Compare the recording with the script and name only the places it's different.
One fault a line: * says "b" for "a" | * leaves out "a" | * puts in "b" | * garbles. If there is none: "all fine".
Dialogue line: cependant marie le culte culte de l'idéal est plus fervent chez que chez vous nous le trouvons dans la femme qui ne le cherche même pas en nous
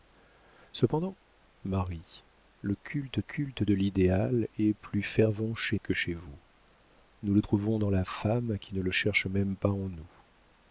all fine